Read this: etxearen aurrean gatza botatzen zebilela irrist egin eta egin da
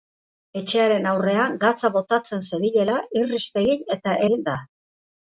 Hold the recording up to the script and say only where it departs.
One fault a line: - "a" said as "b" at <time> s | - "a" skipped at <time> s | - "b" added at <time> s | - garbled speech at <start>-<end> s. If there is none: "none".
none